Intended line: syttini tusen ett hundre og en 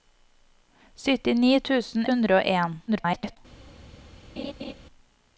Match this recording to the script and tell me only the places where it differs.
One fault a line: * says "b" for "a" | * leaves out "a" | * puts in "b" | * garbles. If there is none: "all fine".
* leaves out "ett"
* garbles